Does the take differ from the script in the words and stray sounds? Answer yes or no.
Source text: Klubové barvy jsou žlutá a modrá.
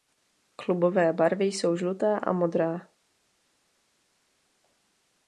no